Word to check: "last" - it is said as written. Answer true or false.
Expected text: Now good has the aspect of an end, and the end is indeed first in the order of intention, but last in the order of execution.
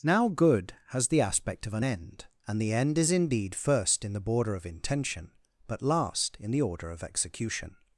true